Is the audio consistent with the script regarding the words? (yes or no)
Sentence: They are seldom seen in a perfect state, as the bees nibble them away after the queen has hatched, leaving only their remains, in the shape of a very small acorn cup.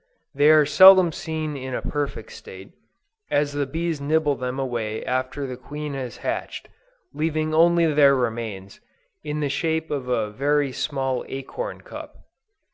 yes